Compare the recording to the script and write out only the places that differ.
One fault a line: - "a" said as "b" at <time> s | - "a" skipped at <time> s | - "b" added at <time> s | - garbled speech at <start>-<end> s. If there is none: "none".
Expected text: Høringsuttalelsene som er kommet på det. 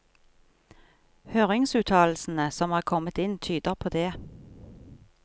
- "inn tyder" added at 3.2 s